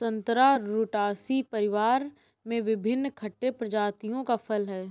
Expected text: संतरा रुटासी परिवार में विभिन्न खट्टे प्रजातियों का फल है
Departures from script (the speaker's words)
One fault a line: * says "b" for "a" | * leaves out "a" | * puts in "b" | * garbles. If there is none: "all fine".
all fine